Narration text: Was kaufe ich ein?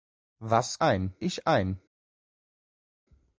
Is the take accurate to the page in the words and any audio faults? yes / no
no